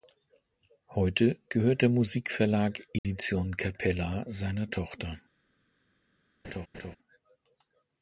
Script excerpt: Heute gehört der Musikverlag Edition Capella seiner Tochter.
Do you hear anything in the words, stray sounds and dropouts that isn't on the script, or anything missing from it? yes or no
yes